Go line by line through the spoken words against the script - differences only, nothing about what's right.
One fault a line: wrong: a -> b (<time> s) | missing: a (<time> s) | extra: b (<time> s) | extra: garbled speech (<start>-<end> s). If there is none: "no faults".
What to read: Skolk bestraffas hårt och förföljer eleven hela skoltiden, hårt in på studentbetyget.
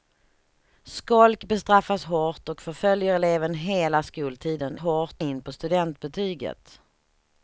no faults